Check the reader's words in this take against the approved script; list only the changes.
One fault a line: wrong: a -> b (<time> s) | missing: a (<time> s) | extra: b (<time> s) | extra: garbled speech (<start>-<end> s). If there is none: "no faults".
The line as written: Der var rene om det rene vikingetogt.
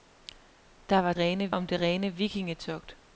no faults